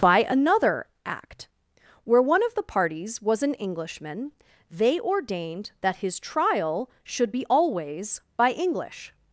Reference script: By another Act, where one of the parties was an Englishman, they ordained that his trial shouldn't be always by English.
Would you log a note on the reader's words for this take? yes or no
yes